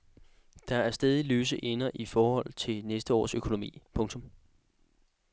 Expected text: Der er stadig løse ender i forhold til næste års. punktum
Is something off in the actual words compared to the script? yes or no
yes